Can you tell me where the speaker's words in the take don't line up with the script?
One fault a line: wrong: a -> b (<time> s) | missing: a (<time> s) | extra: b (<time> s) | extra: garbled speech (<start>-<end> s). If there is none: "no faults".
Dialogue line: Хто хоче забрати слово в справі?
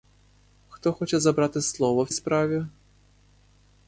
no faults